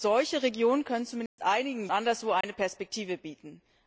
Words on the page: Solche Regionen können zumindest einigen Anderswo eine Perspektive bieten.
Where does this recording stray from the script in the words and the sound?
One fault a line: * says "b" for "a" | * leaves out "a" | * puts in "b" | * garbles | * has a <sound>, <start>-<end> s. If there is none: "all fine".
* has a dropout, 1.3-1.4 s
* has a dropout, 2.4-2.4 s